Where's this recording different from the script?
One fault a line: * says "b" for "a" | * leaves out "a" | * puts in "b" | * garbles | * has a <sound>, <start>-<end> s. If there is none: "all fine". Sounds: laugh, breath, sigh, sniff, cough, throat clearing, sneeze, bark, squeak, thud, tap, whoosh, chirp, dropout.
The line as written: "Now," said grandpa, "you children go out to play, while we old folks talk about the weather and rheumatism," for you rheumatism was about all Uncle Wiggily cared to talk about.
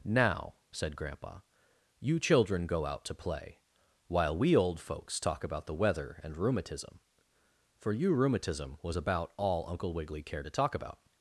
all fine